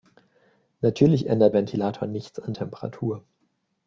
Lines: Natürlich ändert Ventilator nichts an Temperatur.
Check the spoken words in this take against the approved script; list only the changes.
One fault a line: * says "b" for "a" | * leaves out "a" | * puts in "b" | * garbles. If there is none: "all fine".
all fine